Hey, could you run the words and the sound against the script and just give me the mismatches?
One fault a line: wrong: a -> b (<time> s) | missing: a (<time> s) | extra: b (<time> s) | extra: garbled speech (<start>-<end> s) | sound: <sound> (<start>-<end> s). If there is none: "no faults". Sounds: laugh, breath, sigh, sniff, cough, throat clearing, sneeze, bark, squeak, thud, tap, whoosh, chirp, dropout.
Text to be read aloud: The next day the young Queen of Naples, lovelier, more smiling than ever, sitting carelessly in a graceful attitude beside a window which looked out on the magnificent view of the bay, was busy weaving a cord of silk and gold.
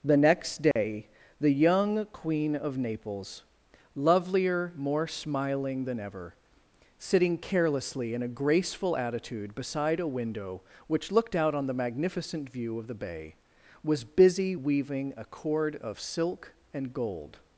sound: dropout (0.7-0.8 s)